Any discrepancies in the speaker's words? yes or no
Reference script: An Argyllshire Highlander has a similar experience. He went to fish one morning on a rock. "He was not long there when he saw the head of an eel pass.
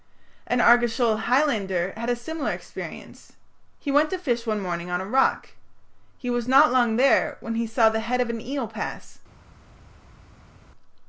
yes